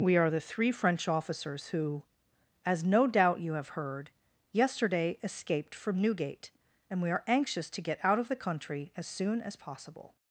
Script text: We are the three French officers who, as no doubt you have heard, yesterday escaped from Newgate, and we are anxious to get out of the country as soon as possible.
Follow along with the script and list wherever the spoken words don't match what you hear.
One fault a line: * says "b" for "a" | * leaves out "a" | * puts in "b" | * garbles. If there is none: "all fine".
all fine